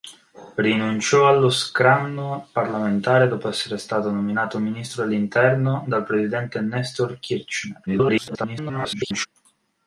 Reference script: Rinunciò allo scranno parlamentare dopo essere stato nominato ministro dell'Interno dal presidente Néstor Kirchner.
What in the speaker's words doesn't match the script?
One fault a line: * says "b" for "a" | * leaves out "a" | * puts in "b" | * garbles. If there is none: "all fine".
* garbles